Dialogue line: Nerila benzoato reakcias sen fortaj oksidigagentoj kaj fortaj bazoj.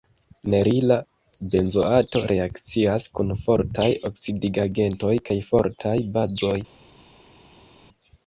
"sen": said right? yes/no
no